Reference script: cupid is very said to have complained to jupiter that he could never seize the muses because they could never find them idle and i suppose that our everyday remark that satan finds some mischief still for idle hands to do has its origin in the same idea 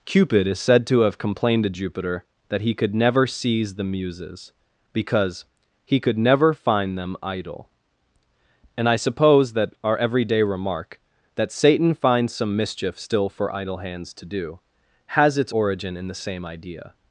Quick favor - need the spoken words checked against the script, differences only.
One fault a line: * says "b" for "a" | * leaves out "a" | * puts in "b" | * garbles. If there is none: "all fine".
* leaves out "very"
* says "he" for "they"